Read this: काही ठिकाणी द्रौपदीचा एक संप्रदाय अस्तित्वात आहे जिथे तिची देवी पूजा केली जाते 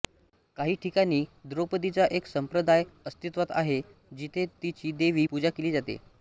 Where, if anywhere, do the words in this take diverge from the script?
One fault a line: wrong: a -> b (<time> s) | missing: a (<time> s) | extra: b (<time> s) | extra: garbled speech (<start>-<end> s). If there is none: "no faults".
no faults